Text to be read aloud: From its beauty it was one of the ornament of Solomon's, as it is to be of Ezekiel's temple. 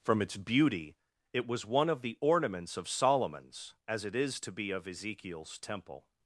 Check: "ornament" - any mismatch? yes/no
yes